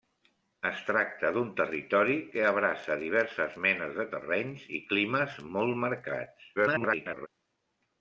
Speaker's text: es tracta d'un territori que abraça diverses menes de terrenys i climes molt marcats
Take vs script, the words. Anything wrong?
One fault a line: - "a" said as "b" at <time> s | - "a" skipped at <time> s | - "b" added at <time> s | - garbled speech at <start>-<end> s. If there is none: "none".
- garbled speech at 6.6-7.3 s